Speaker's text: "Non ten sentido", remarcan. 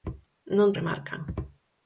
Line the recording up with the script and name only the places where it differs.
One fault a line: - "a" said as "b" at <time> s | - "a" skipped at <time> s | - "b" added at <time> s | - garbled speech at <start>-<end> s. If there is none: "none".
- "ten sentido" skipped at 0.7 s